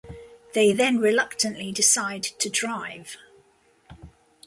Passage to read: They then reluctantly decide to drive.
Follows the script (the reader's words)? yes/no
yes